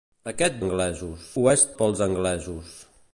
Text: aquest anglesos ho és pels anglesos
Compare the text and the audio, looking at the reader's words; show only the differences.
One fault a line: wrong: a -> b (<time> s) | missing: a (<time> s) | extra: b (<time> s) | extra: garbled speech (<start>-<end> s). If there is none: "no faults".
no faults